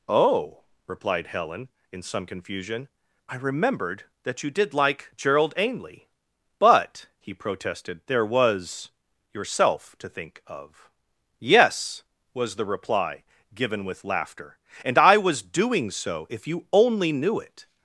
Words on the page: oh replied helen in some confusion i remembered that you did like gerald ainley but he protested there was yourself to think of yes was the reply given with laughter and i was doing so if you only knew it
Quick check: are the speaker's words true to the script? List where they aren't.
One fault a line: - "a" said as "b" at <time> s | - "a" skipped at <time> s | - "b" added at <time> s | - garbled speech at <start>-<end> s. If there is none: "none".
none